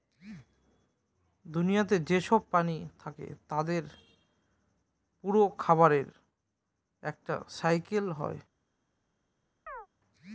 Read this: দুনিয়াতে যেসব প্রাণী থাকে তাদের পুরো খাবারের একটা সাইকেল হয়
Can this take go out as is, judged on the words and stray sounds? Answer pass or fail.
fail